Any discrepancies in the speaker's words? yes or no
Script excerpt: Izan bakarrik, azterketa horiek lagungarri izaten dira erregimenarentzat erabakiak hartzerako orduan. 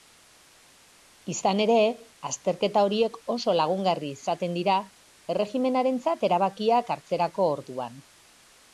yes